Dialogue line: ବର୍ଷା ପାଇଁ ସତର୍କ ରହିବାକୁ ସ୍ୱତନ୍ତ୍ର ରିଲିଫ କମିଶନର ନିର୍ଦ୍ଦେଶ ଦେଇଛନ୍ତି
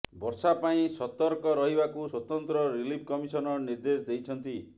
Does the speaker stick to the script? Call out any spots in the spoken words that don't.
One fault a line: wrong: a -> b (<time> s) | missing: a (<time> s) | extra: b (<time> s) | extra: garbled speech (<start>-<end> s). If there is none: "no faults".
no faults